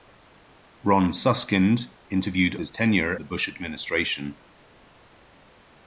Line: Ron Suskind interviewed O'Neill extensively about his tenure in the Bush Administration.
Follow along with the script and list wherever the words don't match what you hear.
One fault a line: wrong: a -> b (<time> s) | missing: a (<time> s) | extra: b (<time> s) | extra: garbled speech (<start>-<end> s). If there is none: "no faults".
missing: O'Neill extensively about (2.5 s)
missing: in (3.1 s)